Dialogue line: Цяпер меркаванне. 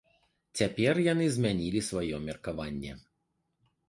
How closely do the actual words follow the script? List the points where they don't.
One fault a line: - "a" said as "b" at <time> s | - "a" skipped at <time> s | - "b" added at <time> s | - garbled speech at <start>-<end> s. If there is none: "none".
- "яны змянілі сваё" added at 1.1 s